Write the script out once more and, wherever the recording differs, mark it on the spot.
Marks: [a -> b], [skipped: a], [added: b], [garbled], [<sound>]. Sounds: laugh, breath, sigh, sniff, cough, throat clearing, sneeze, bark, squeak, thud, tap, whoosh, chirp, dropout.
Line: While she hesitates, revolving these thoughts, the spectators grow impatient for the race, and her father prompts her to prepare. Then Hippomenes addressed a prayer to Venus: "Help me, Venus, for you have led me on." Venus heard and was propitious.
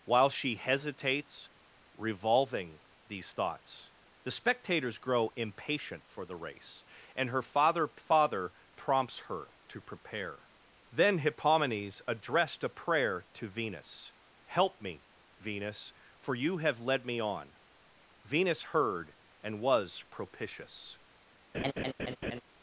While she hesitates, revolving these thoughts, the spectators grow impatient for the race, and her father [added: father] prompts her to prepare. Then Hippomenes addressed a prayer to Venus: "Help me, Venus, for you have led me on." Venus heard and was propitious. [laugh]